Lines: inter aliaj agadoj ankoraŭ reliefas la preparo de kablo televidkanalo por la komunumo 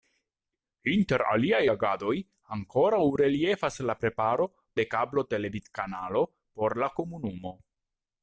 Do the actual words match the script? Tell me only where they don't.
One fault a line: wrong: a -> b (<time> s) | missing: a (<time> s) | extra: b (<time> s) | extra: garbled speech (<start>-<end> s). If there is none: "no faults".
no faults